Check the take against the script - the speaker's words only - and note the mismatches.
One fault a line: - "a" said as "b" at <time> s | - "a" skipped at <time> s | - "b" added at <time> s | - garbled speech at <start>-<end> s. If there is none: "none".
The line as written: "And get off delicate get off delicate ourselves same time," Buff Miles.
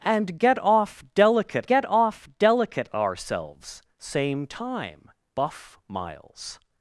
none